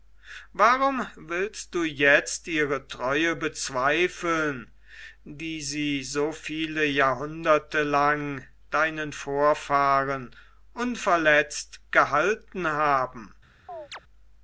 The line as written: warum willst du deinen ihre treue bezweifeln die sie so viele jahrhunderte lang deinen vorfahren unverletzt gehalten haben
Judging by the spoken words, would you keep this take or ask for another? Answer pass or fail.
fail